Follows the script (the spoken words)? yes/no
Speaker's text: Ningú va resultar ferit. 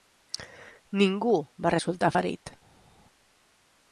yes